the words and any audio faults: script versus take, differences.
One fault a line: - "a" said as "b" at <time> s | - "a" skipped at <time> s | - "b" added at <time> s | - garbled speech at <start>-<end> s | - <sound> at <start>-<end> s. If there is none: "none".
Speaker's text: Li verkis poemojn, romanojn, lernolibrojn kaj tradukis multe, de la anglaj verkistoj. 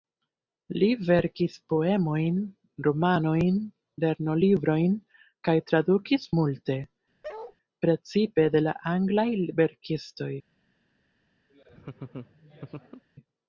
- bark at 7.2-7.6 s
- "precipe" added at 7.9 s
- laugh at 11.5-13.0 s